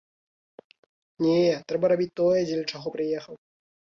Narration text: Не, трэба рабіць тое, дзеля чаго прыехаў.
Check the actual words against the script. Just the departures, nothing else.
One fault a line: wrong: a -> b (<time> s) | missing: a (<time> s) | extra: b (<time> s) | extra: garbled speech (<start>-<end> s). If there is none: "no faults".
no faults